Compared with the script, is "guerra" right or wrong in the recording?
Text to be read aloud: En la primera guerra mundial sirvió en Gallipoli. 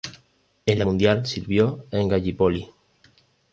wrong